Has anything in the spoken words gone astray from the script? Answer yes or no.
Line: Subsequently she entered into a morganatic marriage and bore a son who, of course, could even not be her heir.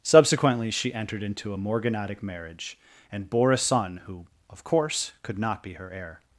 yes